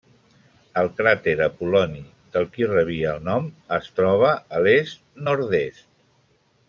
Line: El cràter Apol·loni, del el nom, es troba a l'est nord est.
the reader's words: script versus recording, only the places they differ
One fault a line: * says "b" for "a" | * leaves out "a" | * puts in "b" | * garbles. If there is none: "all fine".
* puts in "qui rebia"